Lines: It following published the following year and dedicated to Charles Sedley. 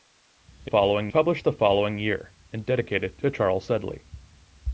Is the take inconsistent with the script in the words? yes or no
no